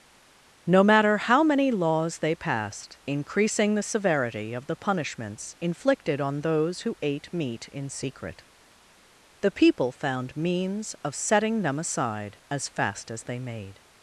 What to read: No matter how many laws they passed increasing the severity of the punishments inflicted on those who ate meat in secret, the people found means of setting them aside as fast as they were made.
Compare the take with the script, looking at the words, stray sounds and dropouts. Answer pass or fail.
fail